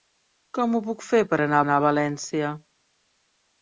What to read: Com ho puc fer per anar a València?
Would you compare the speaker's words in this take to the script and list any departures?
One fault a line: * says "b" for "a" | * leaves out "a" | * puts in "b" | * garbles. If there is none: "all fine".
* puts in "anar"